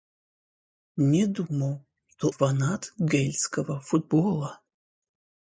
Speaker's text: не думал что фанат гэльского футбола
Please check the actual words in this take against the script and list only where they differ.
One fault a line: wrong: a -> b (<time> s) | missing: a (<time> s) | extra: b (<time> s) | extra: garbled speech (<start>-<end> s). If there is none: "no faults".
no faults